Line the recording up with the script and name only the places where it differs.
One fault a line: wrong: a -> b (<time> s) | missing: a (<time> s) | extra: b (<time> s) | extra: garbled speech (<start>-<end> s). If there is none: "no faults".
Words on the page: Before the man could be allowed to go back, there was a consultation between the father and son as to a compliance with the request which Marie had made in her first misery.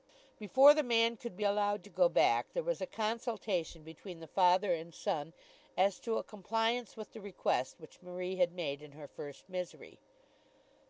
no faults